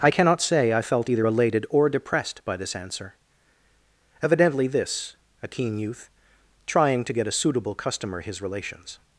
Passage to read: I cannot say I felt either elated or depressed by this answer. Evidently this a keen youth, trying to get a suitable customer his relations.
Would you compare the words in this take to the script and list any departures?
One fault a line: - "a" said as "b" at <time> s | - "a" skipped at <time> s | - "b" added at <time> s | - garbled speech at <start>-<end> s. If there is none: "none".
none